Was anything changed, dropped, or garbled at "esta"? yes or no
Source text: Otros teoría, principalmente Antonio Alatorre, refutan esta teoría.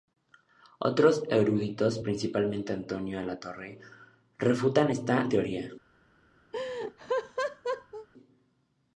no